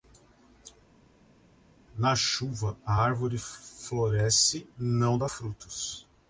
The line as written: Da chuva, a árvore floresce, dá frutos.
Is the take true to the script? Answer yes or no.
no